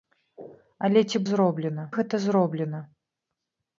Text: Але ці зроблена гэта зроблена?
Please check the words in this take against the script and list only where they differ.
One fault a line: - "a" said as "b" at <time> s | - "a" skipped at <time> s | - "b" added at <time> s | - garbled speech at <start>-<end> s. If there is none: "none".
none